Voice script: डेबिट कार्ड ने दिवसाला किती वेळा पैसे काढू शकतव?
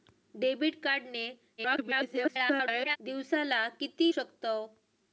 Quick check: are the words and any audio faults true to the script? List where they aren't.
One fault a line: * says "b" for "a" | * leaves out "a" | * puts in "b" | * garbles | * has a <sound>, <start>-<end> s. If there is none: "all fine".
* garbles
* leaves out "वेळा पैसे काढू"